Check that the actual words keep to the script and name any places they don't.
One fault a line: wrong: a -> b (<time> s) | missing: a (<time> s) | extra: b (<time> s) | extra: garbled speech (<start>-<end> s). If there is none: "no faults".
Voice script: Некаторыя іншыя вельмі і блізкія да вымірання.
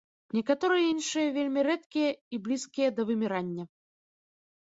extra: рэдкія (1.7 s)